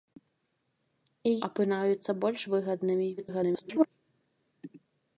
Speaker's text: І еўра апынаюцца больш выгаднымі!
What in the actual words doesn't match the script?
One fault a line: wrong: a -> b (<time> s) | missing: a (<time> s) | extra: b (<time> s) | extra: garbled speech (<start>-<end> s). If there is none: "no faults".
missing: еўра (1.3 s)
extra: garbled speech (3.2-3.9 s)